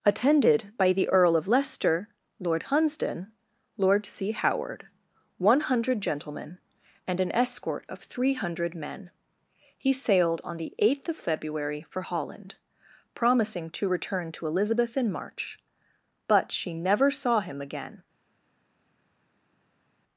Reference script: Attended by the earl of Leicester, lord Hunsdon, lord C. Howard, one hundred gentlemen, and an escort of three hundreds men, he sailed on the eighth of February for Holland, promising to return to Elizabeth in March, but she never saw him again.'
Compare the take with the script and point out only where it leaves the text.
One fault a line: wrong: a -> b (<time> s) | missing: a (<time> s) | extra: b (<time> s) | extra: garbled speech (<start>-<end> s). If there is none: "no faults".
wrong: hundreds -> hundred (8.3 s)